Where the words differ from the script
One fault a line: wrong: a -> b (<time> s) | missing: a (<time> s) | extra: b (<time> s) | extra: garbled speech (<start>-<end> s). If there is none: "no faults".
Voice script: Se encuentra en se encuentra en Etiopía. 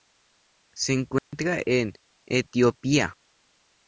missing: se encuentra en (1.9 s)